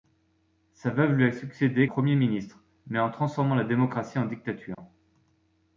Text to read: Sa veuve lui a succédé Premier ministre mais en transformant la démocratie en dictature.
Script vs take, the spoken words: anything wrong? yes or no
no